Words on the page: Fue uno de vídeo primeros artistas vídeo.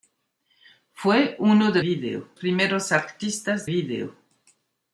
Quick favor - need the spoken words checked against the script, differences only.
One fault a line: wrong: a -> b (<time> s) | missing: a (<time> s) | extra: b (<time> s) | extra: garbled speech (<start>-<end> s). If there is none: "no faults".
no faults